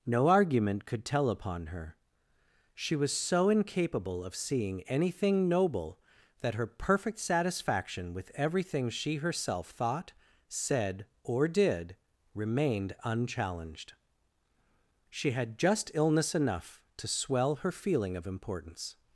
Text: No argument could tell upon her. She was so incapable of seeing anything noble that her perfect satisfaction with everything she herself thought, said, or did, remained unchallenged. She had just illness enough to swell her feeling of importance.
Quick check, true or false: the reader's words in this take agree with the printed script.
true